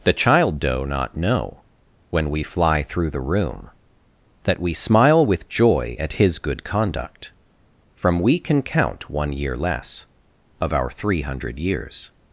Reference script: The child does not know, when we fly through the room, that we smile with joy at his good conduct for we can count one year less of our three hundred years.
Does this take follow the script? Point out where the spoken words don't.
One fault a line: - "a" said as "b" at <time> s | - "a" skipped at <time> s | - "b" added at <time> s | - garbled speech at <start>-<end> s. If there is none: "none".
- "does" said as "doe" at 0.6 s
- "for" said as "from" at 7.9 s